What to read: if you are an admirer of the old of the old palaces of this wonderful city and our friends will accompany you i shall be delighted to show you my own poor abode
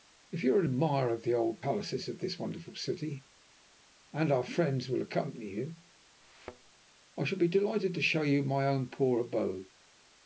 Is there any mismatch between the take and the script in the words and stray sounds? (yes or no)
yes